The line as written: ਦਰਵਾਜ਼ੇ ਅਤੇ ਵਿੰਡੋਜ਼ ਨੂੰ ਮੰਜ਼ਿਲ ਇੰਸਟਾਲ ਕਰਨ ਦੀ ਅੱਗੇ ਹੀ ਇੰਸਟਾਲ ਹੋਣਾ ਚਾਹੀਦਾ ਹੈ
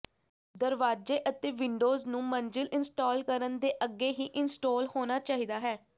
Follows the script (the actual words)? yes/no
no